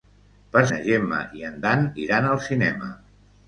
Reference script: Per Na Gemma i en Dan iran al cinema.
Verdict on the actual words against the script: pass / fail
pass